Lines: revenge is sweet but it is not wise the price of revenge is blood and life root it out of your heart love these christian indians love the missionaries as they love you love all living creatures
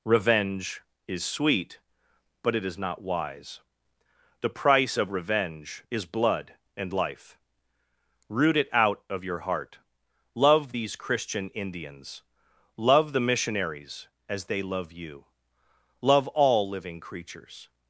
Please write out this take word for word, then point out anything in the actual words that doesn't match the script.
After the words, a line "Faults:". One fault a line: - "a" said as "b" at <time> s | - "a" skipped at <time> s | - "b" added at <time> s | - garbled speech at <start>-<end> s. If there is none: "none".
revenge is sweet but it is not wise the price of revenge is blood and life root it out of your heart love these christian indians love the missionaries as they love you love all living creatures
Faults:
none